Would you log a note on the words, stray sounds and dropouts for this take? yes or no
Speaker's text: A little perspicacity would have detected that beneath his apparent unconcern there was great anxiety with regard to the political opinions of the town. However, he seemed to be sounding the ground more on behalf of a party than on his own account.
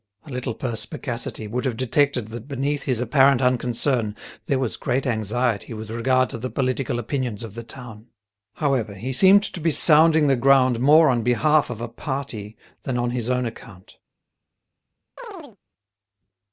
yes